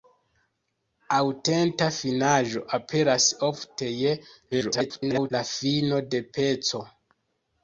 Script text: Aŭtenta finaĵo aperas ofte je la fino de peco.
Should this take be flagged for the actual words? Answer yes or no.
yes